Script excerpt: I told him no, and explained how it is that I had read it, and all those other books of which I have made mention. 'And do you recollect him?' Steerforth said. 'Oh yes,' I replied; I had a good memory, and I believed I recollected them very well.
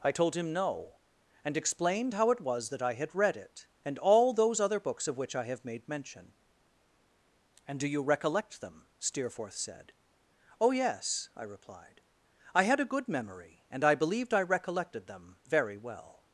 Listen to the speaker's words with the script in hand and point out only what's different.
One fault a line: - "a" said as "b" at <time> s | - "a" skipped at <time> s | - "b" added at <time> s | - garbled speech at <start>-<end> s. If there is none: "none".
- "is" said as "was" at 2.4 s
- "him" said as "them" at 8.6 s